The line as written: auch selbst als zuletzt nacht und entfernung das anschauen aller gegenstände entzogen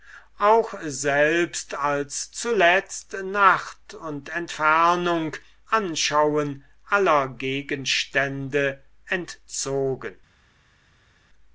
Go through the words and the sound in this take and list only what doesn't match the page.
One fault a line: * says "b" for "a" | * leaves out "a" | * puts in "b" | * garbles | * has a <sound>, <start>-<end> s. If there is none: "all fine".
* leaves out "das"